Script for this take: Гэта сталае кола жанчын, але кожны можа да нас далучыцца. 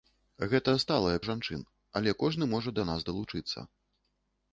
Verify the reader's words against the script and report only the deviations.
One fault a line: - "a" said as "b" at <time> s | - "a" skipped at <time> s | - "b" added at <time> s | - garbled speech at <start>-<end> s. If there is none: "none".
- "кола" skipped at 1.2 s